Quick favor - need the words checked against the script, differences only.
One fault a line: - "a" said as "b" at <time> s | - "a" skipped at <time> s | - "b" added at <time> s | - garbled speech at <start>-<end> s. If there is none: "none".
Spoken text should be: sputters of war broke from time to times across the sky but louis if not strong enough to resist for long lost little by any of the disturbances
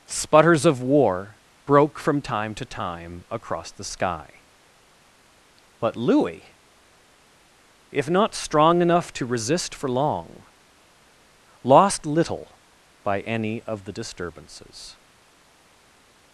- "times" said as "time" at 2.6 s